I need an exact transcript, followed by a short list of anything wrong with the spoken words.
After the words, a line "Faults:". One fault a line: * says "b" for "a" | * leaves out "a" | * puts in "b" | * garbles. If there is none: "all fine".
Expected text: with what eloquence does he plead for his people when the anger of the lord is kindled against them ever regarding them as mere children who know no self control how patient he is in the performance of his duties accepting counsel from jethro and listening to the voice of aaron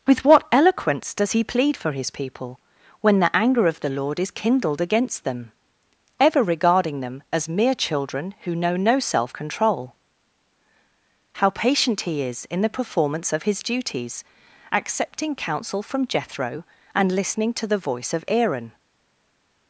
with what eloquence does he plead for his people when the anger of the lord is kindled against them ever regarding them as mere children who know no self control how patient he is in the performance of his duties accepting counsel from jethro and listening to the voice of aaron
Faults:
all fine